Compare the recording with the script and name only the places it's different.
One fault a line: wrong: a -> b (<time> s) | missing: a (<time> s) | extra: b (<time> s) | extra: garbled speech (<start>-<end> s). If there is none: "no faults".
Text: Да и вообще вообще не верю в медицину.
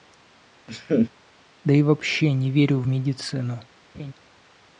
missing: вообще (2.3 s)